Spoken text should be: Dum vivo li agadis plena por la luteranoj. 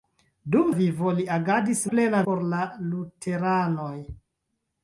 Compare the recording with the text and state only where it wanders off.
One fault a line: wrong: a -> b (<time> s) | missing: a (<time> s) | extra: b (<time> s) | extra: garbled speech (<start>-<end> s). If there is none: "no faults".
no faults